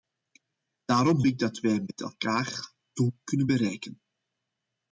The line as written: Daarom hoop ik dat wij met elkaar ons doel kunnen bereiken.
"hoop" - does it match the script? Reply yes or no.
no